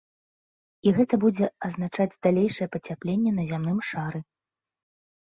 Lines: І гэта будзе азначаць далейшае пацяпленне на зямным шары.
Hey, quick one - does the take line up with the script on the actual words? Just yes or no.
yes